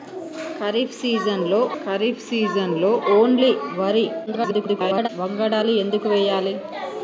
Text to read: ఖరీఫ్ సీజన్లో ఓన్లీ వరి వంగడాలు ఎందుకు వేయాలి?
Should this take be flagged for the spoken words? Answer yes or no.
yes